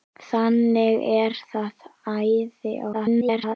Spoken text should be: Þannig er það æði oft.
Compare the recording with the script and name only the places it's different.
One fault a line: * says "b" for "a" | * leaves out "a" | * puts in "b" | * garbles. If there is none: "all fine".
* garbles